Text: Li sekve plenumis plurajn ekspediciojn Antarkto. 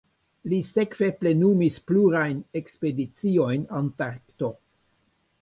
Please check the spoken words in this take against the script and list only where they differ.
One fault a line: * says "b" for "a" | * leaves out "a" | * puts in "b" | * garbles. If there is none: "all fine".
all fine